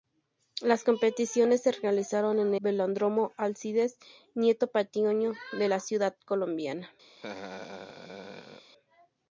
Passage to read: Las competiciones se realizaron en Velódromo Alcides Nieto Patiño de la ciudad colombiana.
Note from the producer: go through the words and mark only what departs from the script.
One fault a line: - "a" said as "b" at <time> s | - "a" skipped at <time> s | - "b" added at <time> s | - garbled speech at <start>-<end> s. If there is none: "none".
none